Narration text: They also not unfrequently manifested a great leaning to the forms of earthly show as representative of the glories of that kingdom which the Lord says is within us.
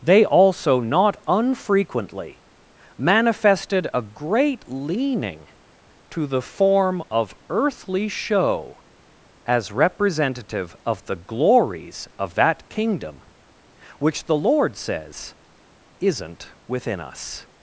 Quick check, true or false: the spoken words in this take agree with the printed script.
false